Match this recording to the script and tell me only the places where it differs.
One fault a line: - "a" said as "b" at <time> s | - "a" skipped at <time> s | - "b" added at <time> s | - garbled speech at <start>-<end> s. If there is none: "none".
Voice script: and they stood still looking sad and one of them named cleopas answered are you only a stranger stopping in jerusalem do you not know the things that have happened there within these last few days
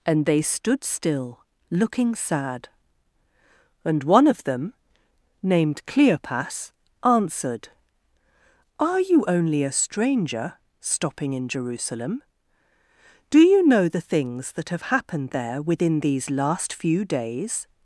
- "not" skipped at 13.7 s